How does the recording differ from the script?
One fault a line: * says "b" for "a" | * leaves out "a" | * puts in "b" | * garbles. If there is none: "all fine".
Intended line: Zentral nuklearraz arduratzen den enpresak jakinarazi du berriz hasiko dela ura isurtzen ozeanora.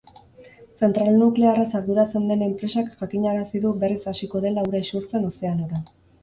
all fine